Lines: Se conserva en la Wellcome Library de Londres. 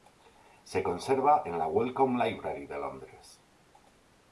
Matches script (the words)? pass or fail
pass